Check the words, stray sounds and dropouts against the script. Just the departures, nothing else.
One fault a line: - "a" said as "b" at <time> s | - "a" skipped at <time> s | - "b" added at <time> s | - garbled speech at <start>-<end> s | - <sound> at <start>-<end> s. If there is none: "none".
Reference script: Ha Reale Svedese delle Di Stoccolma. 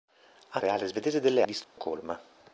- dropout at 1.6-1.8 s